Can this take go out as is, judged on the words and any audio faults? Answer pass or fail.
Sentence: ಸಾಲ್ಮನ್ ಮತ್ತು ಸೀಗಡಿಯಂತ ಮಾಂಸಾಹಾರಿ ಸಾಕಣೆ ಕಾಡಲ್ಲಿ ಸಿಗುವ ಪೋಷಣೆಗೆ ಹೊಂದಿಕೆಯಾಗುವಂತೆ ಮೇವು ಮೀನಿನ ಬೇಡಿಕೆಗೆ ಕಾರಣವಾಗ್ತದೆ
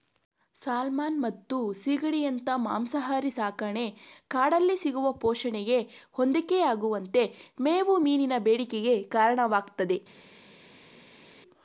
pass